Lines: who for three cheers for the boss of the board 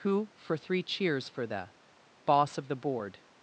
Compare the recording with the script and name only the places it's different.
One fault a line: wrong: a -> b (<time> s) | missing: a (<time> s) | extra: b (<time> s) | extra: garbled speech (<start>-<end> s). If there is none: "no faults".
no faults